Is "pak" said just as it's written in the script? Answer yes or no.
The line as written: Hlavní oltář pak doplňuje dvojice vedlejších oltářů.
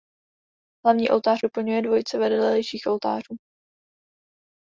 no